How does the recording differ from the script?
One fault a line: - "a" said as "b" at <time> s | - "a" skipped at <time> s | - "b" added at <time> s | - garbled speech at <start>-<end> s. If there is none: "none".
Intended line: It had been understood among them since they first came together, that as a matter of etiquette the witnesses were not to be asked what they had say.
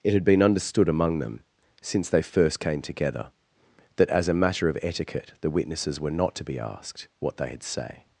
none